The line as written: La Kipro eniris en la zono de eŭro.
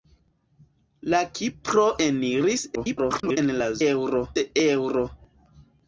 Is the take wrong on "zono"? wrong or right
wrong